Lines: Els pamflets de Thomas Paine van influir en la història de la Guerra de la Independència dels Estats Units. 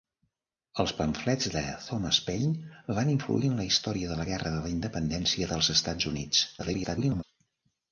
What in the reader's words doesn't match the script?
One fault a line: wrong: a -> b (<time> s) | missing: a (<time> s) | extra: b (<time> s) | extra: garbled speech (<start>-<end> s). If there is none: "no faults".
extra: garbled speech (6.6-7.2 s)